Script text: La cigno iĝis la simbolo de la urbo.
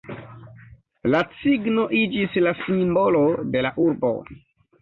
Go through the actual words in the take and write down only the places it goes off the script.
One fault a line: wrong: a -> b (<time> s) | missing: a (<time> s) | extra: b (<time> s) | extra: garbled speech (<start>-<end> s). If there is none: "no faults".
no faults